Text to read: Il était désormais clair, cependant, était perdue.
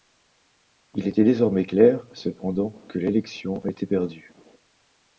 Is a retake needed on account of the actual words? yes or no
yes